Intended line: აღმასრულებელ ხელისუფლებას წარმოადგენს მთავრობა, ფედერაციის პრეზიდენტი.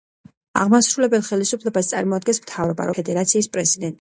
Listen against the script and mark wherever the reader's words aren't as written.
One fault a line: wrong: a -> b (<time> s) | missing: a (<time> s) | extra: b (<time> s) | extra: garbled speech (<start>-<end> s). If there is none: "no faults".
no faults